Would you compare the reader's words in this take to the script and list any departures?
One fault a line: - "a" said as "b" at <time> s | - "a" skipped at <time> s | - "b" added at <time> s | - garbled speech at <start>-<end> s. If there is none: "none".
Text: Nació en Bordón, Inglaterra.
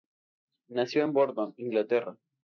none